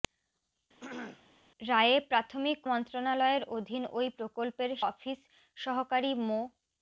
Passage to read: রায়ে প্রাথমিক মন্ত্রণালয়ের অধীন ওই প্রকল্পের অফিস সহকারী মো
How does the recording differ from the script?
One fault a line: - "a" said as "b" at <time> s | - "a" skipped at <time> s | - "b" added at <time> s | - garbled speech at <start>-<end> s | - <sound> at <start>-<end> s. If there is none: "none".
- throat clearing at 0.8-1.2 s